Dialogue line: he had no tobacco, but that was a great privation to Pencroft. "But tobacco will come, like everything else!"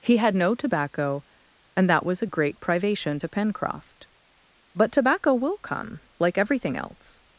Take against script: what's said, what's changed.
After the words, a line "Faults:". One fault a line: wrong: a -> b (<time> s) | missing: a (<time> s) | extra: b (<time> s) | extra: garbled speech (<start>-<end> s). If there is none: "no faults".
he had no tobacco, and that was a great privation to Pencroft. "But tobacco will come, like everything else!"
Faults:
wrong: but -> and (1.8 s)